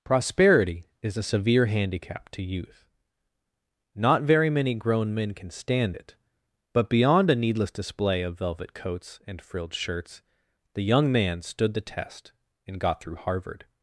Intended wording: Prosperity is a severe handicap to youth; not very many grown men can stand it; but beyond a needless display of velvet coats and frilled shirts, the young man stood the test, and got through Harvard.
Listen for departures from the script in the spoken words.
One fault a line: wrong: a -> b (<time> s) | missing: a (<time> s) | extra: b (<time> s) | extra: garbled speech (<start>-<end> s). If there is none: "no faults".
no faults